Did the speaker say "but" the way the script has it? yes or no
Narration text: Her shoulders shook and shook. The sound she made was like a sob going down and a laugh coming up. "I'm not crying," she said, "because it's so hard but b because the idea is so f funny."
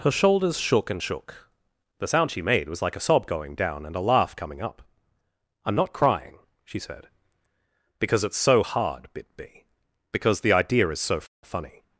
no